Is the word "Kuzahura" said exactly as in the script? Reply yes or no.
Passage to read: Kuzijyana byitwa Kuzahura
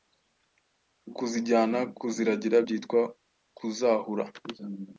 yes